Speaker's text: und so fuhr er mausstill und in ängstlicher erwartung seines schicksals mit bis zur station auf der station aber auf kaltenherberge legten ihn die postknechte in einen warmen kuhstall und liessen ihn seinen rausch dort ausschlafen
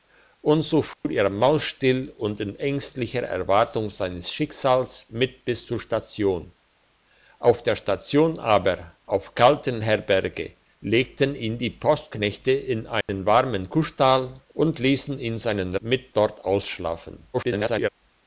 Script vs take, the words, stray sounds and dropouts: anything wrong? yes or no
yes